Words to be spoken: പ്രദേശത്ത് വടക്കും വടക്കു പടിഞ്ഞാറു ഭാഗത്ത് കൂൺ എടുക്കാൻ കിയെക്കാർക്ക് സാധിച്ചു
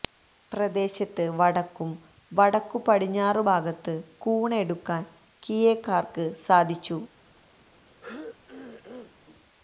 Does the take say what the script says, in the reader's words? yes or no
yes